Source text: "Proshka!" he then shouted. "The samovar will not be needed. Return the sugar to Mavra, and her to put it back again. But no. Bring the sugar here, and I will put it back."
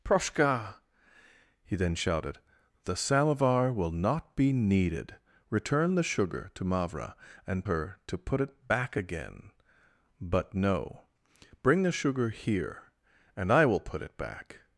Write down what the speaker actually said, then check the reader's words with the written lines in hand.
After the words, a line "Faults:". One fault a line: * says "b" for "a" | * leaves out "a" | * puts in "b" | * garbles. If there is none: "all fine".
"Proshka!" he then shouted. "The samovar will not be needed. Return the sugar to Mavra, and her to put it back again. But no. Bring the sugar here, and I will put it back."
Faults:
all fine